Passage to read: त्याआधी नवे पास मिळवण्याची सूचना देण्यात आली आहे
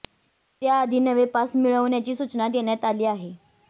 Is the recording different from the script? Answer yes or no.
no